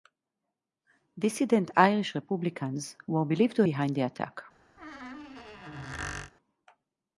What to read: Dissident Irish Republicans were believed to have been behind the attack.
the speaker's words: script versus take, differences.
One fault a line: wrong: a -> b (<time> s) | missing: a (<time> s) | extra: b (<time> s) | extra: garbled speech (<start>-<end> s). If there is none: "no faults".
missing: have been (3.7 s)